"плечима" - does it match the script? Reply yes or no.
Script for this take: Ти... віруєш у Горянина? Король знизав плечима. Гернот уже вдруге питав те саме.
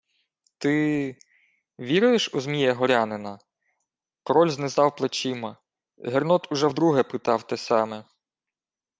yes